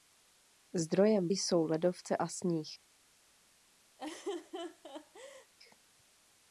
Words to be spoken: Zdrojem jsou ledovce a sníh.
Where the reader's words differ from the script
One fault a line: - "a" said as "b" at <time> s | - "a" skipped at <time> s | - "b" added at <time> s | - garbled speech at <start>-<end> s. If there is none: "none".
none